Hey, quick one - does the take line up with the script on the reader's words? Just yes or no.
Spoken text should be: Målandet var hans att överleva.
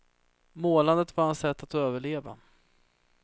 no